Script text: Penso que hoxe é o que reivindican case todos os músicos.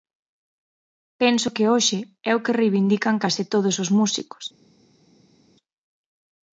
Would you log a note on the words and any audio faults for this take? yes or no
no